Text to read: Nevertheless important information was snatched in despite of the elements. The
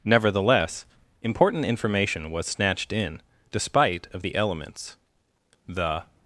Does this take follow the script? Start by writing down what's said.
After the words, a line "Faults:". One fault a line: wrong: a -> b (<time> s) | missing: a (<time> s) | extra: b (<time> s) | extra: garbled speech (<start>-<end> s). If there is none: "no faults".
Nevertheless important information was snatched in despite of the elements. The
Faults:
no faults